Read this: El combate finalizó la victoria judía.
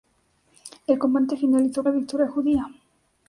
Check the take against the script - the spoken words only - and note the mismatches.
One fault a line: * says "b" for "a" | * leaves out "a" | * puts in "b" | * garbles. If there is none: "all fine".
all fine